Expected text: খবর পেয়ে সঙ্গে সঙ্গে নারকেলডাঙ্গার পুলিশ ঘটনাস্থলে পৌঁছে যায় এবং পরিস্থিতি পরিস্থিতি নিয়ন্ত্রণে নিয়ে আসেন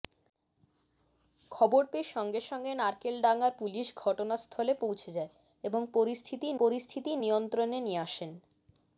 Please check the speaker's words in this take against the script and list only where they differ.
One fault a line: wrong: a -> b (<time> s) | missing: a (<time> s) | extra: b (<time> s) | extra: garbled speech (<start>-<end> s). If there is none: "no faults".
no faults